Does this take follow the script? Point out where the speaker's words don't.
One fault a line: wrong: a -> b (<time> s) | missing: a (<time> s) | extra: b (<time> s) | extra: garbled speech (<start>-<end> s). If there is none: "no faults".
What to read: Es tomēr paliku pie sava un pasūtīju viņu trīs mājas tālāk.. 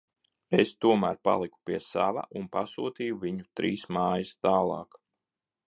no faults